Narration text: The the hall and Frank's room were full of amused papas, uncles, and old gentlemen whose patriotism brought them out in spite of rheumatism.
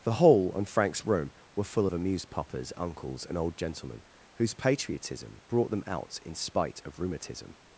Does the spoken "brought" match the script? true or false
true